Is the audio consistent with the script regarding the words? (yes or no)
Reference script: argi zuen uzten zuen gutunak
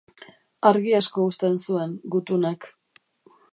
no